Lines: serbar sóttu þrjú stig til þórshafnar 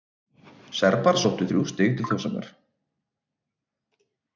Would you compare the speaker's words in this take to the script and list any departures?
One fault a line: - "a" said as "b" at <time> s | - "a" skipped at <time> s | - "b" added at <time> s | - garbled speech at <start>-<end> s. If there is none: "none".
none